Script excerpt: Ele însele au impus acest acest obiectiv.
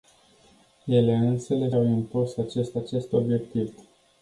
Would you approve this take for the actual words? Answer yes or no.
yes